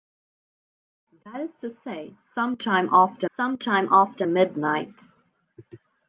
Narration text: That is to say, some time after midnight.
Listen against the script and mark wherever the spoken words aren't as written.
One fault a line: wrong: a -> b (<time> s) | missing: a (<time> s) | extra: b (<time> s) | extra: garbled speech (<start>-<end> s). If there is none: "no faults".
extra: some time after (3.4 s)